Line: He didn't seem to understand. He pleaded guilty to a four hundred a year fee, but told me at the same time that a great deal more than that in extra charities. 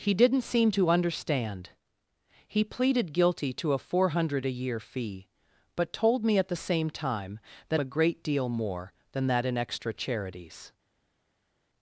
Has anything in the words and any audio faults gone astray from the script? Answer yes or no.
no